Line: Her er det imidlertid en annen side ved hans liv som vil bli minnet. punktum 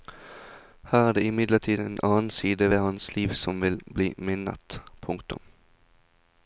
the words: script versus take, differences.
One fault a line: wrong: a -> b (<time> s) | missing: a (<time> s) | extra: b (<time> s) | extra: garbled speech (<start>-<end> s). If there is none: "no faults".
no faults